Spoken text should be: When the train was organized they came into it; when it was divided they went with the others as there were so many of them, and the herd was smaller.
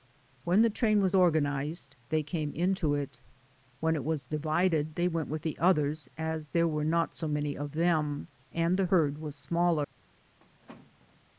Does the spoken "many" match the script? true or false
true